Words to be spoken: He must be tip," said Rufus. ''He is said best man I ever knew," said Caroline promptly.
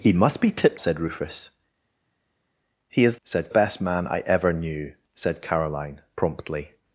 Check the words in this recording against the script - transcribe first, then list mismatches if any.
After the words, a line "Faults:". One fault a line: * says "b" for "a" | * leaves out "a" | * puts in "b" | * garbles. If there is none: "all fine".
He must be tip," said Rufus. ''He is said best man I ever knew," said Caroline promptly.
Faults:
all fine